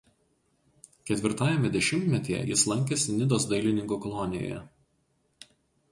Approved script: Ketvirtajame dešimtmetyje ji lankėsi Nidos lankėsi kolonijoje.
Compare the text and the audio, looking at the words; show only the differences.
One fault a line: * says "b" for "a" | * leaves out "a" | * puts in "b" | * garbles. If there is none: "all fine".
* says "jis" for "ji"
* says "dailininkų" for "lankėsi"